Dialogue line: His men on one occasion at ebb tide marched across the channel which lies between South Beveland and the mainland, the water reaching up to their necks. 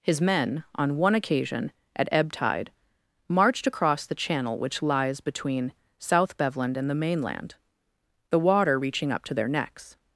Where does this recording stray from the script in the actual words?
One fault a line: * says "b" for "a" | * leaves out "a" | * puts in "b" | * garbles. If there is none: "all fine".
all fine